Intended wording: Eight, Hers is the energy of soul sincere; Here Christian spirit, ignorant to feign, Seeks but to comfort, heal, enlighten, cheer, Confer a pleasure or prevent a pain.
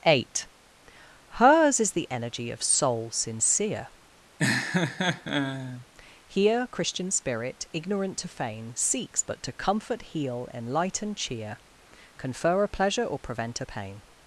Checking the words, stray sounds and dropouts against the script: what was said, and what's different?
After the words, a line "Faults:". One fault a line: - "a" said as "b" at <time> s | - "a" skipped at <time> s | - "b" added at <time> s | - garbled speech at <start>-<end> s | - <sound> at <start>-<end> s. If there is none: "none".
Eight, Hers is the energy of soul sincere; Here Christian spirit, ignorant to feign, Seeks but to comfort, heal, enlighten, cheer, Confer a pleasure or prevent a pain.
Faults:
- laugh at 4.4-5.9 s